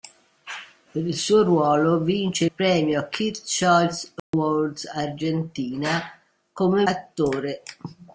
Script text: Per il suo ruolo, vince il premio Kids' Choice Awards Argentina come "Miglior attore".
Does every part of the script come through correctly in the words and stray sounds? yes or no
no